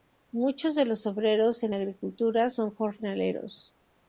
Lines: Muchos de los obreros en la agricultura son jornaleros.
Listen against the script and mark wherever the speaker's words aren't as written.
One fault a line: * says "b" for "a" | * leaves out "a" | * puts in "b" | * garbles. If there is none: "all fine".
all fine